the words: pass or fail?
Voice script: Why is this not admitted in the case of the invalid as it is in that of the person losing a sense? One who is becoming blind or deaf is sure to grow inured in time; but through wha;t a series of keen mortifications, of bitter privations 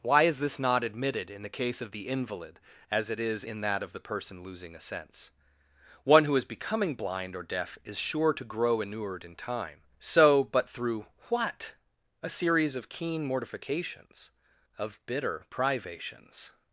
fail